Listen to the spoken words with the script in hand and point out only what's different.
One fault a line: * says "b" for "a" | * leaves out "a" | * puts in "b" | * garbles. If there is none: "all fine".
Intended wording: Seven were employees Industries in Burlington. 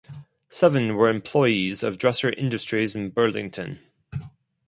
* puts in "of Dresser"